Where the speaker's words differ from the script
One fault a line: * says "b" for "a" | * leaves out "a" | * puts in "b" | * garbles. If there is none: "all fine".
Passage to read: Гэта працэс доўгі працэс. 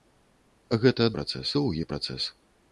all fine